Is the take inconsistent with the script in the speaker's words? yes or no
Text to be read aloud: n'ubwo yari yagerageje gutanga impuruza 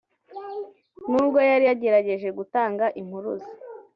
no